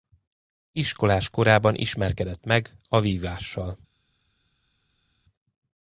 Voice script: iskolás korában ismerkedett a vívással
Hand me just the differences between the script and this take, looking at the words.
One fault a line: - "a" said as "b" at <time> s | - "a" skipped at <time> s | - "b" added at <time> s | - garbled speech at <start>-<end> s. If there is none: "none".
- "meg" added at 2.5 s